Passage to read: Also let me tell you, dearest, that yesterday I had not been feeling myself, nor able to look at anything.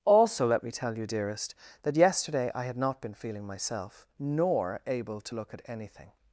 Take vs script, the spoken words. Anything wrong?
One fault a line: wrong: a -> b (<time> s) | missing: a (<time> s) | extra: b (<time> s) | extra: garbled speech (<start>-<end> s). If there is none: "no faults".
no faults